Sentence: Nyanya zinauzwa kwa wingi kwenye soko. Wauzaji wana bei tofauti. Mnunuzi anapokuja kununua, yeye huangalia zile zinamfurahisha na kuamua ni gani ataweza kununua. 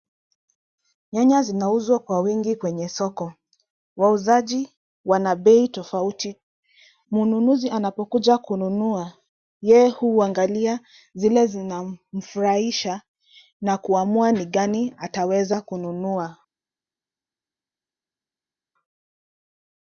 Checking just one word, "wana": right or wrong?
right